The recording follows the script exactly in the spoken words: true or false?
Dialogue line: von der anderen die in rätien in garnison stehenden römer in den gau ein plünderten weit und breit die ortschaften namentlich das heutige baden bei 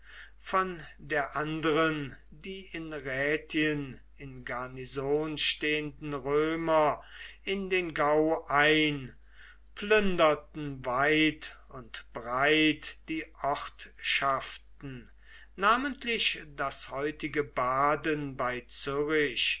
true